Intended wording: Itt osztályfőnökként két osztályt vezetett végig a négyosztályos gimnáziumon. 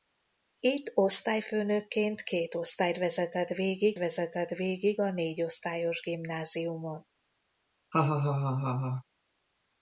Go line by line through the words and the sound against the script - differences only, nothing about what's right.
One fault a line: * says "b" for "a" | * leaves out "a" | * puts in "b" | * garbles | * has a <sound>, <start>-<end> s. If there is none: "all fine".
* puts in "vezetett végig"
* has a laugh, 7.9-9.0 s